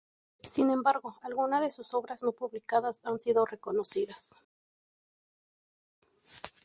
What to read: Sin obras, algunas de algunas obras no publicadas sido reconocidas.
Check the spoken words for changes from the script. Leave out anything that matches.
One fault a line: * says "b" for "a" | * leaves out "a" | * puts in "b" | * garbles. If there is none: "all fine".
* says "embargo" for "obras"
* says "sus" for "algunas"
* puts in "han"